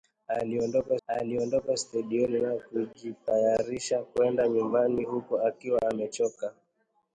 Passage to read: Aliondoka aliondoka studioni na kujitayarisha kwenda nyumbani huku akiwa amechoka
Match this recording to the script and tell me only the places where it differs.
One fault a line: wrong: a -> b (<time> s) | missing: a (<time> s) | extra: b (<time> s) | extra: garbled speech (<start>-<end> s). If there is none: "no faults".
no faults